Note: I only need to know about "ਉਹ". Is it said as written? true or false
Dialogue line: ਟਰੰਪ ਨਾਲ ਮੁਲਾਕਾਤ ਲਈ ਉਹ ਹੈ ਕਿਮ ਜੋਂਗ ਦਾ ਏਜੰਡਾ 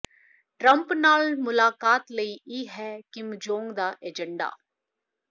false